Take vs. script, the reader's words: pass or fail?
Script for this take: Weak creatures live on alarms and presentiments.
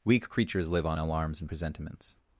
pass